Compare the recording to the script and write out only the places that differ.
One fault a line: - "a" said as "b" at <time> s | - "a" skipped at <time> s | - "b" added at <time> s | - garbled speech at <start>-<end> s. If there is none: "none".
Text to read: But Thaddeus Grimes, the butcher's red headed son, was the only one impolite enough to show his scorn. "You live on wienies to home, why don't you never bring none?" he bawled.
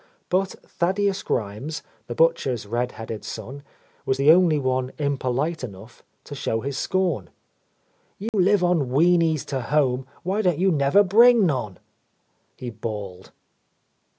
none